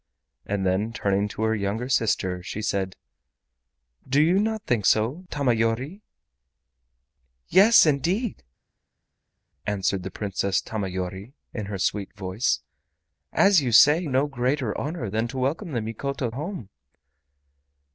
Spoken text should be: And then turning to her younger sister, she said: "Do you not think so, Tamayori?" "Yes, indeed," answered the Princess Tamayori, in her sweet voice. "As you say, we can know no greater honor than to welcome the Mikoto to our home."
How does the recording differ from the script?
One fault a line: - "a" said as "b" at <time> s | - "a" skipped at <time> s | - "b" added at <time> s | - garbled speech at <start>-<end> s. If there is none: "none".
- "we can know" skipped at 14.1 s
- "to our" skipped at 16.3 s